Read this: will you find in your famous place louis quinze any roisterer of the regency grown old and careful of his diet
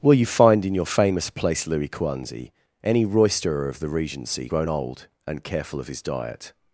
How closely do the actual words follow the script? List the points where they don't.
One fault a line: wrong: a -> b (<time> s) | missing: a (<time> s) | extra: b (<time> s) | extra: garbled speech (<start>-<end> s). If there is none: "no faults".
no faults